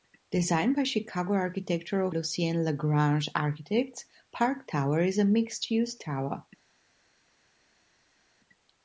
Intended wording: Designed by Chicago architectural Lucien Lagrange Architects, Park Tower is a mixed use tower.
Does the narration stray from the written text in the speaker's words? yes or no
no